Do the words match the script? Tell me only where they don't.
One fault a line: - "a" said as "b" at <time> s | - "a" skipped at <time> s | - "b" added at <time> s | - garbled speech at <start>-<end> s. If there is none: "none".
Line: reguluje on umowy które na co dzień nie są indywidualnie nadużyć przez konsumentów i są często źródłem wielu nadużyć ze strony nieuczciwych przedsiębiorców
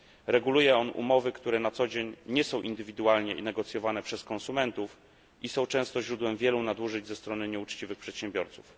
- "nadużyć" said as "negocjowane" at 3.4 s